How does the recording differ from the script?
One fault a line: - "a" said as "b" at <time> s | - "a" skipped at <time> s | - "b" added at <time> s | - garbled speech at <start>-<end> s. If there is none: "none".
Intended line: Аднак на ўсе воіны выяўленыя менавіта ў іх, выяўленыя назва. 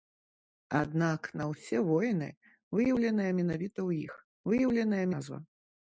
none